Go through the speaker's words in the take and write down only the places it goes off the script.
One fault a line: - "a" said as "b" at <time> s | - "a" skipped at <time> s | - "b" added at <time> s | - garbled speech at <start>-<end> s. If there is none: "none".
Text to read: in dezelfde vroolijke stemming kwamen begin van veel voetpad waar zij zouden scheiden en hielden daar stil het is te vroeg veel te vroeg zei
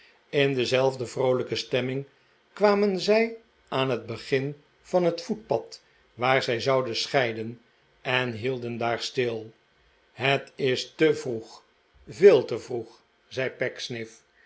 - "zij aan het" added at 3.0 s
- "veel" said as "het" at 5.0 s